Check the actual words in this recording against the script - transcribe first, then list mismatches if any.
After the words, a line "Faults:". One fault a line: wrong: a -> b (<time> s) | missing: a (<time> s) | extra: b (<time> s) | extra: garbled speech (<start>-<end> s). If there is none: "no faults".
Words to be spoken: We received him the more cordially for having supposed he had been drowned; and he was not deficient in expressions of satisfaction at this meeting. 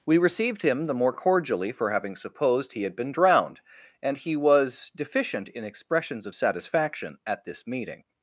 We received him the more cordially for having supposed he had been drowned; and he was deficient in expressions of satisfaction at this meeting.
Faults:
missing: not (4.9 s)